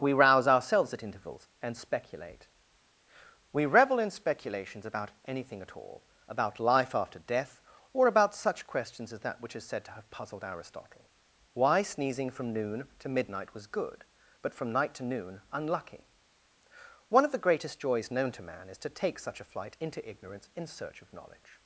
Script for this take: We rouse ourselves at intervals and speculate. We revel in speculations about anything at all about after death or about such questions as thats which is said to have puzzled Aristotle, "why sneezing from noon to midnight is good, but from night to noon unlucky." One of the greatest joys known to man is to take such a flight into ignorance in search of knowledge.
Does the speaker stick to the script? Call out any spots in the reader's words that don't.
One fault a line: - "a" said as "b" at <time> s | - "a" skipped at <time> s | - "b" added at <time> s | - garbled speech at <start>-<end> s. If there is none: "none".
- "life" added at 6.6 s
- "thats" said as "that" at 9.2 s
- "is" said as "was" at 13.5 s